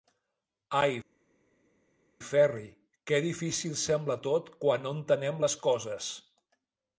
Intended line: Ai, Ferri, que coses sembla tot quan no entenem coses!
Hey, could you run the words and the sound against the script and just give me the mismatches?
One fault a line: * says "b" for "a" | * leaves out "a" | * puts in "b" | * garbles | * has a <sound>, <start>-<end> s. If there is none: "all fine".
* says "difícil" for "coses"
* puts in "les"